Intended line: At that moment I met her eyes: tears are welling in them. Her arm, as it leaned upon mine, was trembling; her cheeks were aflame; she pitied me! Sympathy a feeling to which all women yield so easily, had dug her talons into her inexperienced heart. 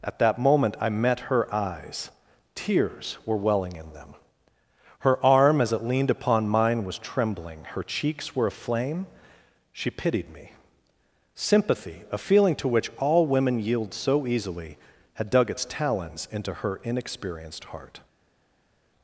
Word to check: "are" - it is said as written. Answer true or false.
false